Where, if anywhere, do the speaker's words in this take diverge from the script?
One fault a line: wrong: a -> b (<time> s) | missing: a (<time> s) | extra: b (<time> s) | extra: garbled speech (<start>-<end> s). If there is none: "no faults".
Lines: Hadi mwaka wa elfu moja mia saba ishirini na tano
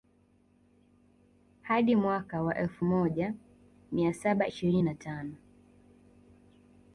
no faults